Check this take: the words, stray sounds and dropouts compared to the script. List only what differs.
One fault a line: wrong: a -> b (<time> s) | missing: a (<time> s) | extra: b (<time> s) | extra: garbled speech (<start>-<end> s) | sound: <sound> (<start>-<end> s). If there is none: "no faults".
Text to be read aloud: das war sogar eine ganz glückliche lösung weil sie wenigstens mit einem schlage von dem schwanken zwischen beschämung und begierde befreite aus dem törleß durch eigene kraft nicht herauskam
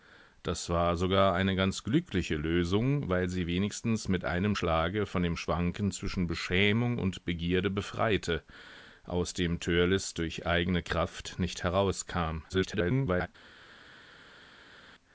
extra: garbled speech (12.5-13.3 s)